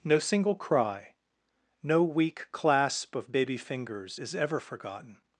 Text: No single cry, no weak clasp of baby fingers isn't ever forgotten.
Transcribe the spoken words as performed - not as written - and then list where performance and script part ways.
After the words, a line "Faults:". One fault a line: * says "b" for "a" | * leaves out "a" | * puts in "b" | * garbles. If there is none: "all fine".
No single cry, no weak clasp of baby fingers is ever forgotten.
Faults:
* says "is" for "isn't"